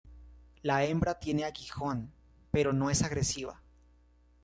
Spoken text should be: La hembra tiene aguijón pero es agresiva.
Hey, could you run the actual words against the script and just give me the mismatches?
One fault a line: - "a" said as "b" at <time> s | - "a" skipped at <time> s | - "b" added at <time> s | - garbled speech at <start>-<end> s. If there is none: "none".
- "no" added at 2.7 s